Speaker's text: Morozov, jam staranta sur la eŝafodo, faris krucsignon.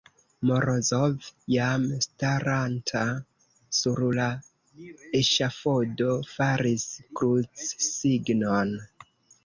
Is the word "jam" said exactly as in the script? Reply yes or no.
yes